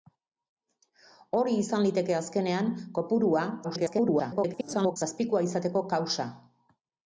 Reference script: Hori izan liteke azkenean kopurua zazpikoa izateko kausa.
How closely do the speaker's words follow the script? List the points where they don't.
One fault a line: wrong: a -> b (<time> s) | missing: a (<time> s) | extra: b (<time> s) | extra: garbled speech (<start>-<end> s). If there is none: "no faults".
extra: garbled speech (3.6-5.0 s)